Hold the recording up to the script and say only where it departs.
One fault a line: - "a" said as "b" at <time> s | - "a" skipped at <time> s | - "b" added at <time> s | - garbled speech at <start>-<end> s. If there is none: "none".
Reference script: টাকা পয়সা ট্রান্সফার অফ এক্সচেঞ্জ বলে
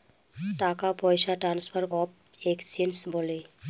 none